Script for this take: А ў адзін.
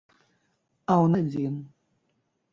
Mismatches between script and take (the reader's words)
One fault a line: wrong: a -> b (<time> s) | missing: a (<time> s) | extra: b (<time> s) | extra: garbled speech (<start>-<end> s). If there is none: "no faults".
no faults